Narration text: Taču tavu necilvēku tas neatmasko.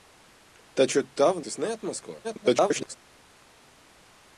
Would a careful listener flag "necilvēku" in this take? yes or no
yes